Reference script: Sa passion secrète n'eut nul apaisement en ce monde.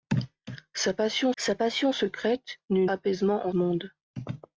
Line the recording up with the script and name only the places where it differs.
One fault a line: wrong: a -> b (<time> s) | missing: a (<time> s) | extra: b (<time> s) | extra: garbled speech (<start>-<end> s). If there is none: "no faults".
extra: sa passion (1.4 s)
missing: nul (2.9 s)
missing: ce (3.5 s)